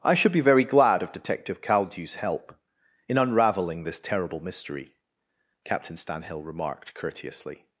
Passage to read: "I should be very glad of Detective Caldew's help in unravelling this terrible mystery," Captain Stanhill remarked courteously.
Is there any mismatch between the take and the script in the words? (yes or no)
no